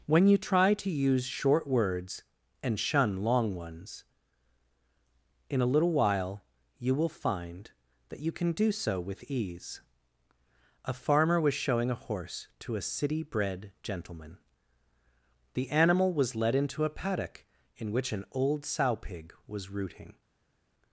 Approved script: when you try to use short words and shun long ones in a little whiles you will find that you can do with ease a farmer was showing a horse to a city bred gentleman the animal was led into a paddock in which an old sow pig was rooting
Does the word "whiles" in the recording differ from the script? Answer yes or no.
yes